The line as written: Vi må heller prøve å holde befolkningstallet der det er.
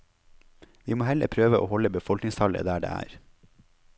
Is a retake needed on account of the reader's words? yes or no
no